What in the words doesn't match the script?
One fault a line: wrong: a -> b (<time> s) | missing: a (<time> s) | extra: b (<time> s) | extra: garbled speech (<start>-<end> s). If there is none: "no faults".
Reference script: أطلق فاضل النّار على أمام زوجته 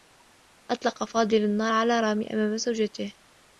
extra: رامي (2.0 s)